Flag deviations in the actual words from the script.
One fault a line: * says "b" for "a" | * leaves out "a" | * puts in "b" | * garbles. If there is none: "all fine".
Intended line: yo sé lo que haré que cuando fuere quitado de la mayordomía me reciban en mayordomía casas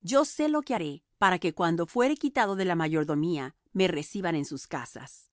* puts in "para"
* says "sus" for "mayordomía"